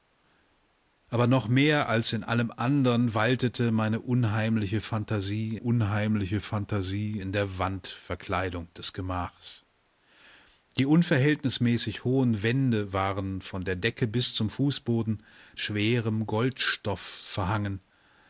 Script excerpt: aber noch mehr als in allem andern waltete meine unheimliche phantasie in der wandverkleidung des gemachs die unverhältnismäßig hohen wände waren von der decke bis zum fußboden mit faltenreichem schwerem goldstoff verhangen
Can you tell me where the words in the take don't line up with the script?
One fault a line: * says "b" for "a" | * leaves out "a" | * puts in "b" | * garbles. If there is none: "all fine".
* puts in "unheimliche phantasie"
* leaves out "mit faltenreichem"